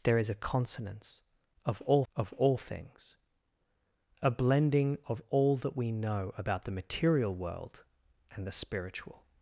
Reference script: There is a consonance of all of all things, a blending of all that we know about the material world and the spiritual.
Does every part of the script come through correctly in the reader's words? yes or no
yes